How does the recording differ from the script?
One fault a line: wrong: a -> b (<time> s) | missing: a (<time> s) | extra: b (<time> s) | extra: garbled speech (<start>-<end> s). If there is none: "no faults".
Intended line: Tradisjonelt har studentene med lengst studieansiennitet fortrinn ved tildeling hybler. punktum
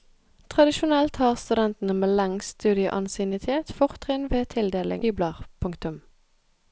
no faults